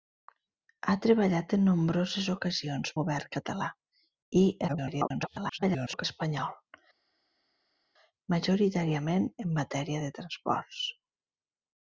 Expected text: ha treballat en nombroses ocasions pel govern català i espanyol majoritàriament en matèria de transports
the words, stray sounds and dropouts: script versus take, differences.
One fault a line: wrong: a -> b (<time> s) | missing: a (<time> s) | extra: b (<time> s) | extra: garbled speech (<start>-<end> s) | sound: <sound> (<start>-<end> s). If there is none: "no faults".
missing: pel (2.9 s)
extra: garbled speech (4.7-6.1 s)